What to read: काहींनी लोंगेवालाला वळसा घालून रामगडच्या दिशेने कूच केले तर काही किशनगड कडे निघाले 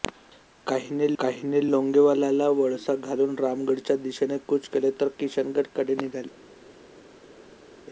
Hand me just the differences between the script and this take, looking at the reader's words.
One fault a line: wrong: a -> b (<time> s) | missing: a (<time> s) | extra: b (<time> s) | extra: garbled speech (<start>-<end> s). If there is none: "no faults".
extra: काहींनी (1.2 s)
missing: काही (5.1 s)